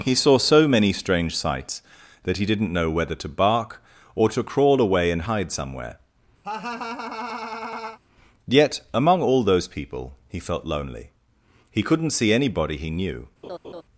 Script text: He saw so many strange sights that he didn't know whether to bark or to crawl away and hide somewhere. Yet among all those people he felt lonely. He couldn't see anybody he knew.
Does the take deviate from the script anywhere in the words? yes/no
no